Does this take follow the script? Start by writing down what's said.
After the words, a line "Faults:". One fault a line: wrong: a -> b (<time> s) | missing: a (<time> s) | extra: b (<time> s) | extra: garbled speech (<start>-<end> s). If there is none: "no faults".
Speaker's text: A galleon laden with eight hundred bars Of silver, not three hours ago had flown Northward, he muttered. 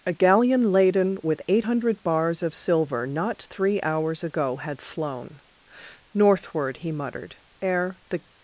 A galleon laden with eight hundred bars Of silver, not three hours ago had flown Northward, he muttered. Ere the
Faults:
extra: Ere the (7.6 s)